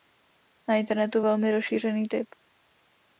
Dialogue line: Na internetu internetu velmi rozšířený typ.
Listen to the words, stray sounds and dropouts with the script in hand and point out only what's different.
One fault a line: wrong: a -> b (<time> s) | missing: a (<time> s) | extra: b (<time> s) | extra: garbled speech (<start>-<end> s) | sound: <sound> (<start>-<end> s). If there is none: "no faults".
missing: internetu (1.2 s)